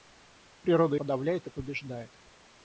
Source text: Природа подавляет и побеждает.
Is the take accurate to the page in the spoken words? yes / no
yes